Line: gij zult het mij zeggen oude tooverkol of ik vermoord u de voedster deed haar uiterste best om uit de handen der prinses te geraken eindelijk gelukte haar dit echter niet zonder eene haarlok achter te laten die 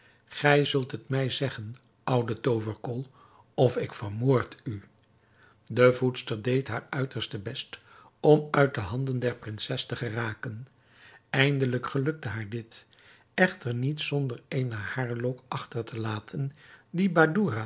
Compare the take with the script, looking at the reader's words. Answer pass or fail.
pass